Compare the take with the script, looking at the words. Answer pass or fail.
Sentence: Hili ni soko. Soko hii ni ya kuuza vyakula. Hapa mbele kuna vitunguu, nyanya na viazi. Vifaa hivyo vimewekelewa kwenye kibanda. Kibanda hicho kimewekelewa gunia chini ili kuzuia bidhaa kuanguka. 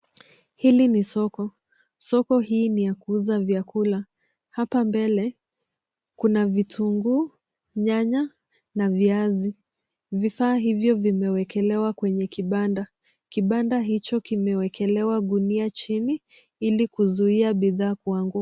pass